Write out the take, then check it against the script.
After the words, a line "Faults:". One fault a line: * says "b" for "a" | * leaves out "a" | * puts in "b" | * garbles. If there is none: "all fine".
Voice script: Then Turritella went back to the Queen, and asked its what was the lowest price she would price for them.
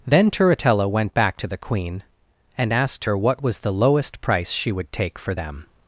Then Turritella went back to the Queen, and asked her what was the lowest price she would take for them.
Faults:
* says "her" for "its"
* says "take" for "price"